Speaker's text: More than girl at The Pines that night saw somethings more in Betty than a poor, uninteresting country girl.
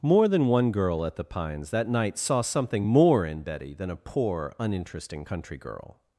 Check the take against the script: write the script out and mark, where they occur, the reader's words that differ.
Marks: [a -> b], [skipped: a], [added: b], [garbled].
More than [added: one] girl at The Pines that night saw [somethings -> something] more in Betty than a poor, uninteresting country girl.